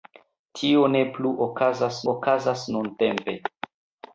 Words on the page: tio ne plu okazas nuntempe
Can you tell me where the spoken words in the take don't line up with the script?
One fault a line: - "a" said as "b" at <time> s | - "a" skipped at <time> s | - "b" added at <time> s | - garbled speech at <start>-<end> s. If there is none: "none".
- "okazas" added at 2.1 s